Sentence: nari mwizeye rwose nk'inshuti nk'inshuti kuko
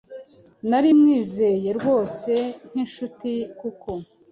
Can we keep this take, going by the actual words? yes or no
no